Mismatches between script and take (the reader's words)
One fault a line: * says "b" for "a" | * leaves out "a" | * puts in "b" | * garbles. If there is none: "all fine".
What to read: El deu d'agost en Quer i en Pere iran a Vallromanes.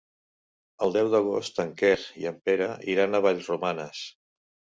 all fine